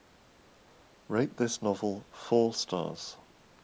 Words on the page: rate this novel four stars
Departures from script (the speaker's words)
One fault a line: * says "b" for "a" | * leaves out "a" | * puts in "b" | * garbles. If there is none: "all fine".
all fine